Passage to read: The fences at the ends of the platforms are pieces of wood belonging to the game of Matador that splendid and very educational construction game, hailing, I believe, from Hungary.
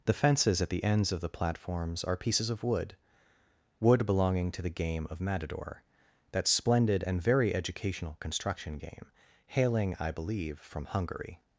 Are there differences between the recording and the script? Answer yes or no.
yes